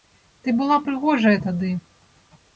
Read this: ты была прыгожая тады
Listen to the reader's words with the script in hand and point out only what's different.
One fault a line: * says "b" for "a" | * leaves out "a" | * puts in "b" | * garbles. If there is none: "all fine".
all fine